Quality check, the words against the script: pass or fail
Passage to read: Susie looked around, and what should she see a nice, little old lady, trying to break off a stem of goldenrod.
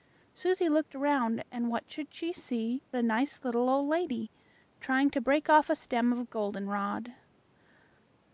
pass